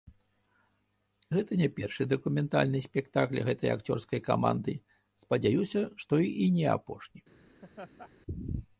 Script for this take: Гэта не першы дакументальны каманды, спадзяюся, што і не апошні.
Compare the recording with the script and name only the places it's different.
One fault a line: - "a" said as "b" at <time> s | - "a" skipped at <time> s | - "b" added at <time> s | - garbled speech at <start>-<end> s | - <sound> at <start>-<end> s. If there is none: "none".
- "спектакль гэтай акцёрскай" added at 2.9 s
- laugh at 7.6-8.1 s